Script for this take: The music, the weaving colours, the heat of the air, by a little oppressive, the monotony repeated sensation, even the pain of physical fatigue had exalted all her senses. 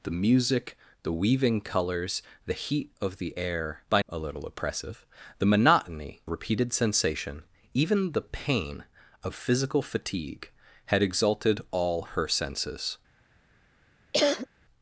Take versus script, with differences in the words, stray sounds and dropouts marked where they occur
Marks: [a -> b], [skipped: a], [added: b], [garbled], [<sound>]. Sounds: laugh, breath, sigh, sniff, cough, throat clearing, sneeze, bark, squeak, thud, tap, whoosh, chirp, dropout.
The music, the weaving colours, the heat of the air, by a little oppressive, the monotony repeated sensation, even the pain of physical fatigue had exalted all her senses. [cough]